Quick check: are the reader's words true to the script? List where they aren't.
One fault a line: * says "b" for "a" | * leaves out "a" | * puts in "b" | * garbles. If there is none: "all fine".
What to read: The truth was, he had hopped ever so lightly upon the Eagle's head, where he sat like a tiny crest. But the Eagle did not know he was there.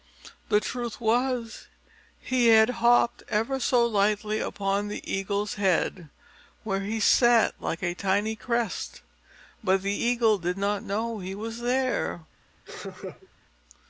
all fine